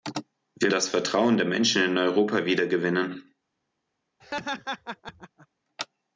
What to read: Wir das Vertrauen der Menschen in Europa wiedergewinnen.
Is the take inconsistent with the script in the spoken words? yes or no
no